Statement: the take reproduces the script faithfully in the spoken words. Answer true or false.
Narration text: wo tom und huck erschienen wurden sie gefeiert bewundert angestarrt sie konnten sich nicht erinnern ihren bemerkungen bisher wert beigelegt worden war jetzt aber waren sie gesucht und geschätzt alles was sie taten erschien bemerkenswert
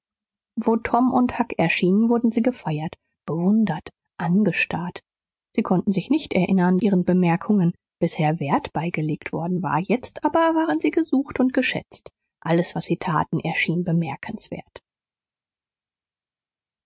true